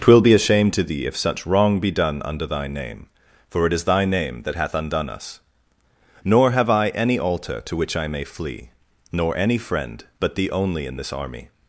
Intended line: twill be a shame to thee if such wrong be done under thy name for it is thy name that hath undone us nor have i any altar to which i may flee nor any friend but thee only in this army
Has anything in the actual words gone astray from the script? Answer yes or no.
no